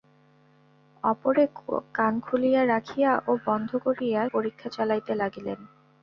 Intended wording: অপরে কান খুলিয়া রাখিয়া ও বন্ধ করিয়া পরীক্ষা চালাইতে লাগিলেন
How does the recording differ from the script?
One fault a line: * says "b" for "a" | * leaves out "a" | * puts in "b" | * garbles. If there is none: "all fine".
all fine